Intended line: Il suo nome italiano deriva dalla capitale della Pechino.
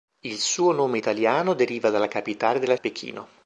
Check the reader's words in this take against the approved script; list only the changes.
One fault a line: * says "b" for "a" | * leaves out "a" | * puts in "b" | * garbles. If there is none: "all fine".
all fine